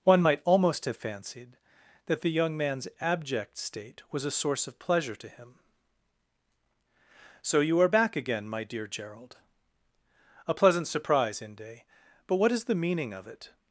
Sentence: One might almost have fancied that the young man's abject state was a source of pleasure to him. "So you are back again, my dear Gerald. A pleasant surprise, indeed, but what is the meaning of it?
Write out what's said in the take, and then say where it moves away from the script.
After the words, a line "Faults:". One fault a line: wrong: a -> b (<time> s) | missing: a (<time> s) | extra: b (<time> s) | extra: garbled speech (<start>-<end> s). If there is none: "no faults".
One might almost have fancied that the young man's abject state was a source of pleasure to him. "So you are back again, my dear Gerald. A pleasant surprise, inde, but what is the meaning of it?
Faults:
wrong: indeed -> inde (11.4 s)